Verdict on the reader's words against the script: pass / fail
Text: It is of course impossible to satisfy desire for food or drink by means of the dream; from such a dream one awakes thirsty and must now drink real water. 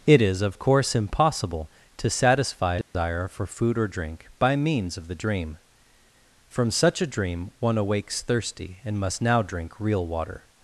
pass